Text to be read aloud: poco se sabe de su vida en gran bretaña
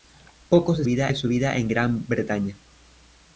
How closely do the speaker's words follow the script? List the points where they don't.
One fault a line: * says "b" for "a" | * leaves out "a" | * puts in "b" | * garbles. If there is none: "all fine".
* says "vida" for "sabe"